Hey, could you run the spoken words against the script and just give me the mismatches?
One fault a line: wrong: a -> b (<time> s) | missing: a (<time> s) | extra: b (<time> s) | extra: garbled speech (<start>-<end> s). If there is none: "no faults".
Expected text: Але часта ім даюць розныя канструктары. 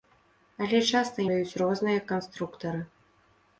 missing: ім (1.3 s)